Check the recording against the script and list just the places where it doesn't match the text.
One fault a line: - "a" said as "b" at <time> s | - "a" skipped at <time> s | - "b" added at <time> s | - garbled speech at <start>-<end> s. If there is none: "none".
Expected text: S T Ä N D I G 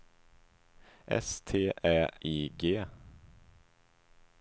- "N D" skipped at 2.1 s